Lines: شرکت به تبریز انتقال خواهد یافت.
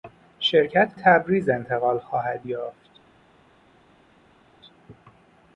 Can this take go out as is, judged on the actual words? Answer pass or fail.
fail